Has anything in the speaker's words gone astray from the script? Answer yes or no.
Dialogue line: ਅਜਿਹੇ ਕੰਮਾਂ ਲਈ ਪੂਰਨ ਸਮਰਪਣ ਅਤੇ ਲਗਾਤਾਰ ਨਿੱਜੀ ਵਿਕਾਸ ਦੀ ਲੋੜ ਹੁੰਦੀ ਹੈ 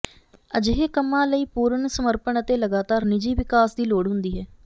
no